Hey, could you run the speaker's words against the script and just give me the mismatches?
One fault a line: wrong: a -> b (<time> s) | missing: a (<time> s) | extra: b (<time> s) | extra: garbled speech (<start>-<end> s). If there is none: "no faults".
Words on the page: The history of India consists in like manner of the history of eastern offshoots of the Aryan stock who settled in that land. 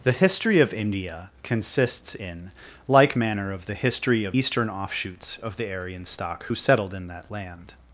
no faults